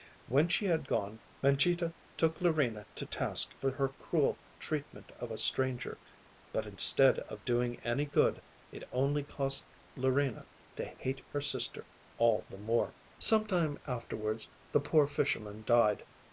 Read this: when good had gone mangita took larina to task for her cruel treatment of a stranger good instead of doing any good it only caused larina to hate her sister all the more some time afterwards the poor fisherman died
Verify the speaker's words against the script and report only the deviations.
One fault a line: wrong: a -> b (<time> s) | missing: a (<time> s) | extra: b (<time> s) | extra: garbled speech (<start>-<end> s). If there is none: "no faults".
wrong: good -> she (0.5 s)
wrong: good -> but (6.5 s)